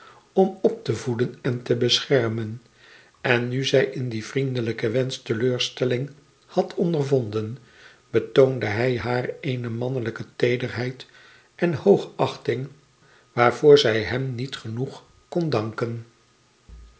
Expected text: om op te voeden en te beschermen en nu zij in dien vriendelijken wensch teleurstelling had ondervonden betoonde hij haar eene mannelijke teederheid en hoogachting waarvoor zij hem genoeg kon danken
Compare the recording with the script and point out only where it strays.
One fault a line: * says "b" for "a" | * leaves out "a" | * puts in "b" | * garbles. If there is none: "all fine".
* puts in "niet"